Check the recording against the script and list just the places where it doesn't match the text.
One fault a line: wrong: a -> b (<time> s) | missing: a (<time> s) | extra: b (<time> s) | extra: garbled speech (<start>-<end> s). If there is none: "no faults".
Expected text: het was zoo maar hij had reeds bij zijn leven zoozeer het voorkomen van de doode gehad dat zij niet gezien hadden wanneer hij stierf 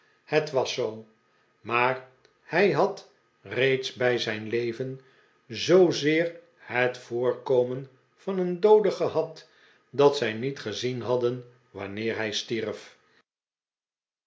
wrong: de -> een (8.4 s)